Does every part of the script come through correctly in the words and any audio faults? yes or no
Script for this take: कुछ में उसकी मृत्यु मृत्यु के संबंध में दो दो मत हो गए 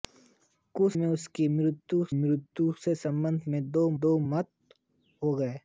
yes